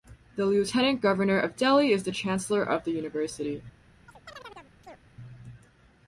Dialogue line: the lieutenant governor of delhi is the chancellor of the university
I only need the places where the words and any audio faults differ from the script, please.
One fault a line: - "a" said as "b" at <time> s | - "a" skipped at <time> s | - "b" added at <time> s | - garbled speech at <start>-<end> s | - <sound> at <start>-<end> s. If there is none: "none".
- chirp at 4.1-5.0 s